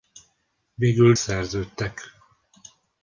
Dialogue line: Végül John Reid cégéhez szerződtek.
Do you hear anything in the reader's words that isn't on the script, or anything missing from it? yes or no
yes